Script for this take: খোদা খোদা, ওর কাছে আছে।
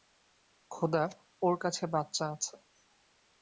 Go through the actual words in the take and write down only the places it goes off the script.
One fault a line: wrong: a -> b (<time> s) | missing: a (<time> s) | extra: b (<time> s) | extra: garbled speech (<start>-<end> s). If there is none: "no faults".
missing: খোদা (1.0 s)
extra: বাচ্চা (1.9 s)